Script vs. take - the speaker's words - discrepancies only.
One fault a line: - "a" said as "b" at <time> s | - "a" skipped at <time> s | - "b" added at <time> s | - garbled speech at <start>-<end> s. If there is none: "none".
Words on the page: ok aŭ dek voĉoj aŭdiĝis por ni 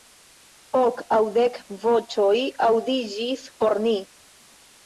none